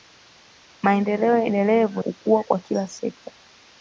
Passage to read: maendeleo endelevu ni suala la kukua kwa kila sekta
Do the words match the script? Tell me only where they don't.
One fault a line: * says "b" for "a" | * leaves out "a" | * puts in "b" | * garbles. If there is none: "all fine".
* leaves out "ni suala la"